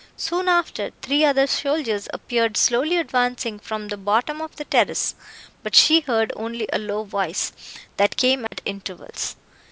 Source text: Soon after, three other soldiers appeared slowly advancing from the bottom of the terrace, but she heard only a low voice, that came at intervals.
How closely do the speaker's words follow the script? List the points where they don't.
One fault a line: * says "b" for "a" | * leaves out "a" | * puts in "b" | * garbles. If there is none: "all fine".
all fine